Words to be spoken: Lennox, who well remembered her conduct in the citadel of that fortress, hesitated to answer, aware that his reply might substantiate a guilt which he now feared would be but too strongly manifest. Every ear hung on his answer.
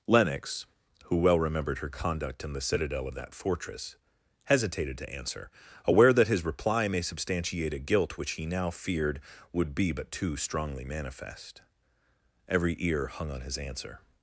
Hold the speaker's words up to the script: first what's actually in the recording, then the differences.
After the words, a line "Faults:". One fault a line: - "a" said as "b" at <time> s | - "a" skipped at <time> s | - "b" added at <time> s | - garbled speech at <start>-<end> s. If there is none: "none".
Lennox, who well remembered her conduct in the citadel of that fortress, hesitated to answer, aware that his reply may substantiate a guilt which he now feared would be but too strongly manifest. Every ear hung on his answer.
Faults:
- "might" said as "may" at 6.9 s